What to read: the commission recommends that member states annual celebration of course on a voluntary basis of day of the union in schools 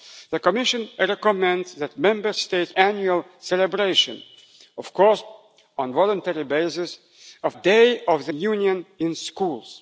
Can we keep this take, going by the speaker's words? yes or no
yes